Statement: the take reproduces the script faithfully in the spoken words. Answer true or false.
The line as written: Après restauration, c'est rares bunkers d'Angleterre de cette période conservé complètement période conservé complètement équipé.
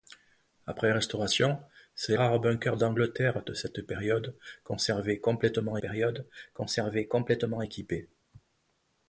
true